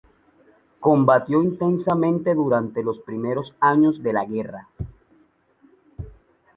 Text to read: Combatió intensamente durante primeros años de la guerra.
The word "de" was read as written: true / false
true